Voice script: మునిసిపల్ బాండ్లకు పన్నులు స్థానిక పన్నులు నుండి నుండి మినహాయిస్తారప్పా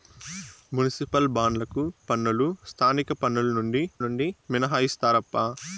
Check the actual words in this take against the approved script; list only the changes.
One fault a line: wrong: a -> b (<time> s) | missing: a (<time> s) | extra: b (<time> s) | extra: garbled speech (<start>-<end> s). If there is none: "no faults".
no faults